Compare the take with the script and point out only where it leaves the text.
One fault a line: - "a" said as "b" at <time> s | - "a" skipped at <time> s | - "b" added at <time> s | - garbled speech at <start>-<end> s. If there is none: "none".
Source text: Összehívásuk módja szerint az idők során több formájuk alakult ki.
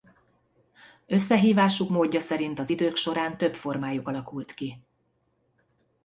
none